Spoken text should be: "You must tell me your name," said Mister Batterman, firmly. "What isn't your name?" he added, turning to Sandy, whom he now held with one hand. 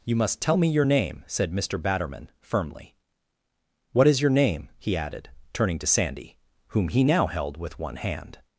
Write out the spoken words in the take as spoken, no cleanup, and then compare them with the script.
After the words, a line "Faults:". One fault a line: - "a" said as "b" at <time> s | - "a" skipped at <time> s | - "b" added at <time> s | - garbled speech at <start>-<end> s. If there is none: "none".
"You must tell me your name," said Mister Batterman, firmly. "What is your name?" he added, turning to Sandy, whom he now held with one hand.
Faults:
- "isn't" said as "is" at 4.1 s